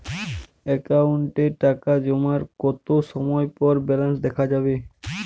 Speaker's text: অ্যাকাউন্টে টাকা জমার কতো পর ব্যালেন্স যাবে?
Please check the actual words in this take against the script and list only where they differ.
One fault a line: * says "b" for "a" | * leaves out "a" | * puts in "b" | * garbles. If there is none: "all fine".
* puts in "সময়"
* puts in "দেখা"